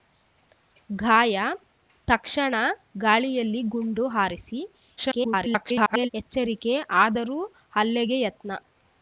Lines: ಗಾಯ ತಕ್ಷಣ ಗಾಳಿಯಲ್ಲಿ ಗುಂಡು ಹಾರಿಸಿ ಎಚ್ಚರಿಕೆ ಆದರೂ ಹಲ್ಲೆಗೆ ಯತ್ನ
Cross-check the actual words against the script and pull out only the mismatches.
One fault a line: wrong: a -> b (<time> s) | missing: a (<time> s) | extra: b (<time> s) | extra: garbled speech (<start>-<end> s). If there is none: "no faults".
extra: garbled speech (5.0-6.1 s)